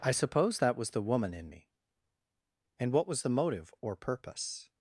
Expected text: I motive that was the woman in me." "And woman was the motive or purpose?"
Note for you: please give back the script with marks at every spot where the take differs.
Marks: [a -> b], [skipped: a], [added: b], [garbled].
I [motive -> suppose] that was the woman in me." "And [woman -> what] was the motive or purpose?"